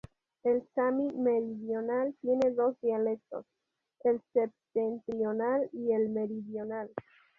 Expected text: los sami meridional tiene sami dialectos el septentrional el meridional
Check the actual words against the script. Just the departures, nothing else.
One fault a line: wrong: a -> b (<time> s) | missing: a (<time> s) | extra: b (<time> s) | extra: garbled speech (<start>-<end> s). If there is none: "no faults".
wrong: los -> el (0.4 s)
wrong: sami -> dos (2.5 s)
extra: y (5.7 s)